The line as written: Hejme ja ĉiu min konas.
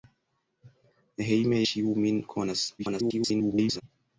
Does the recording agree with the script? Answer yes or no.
no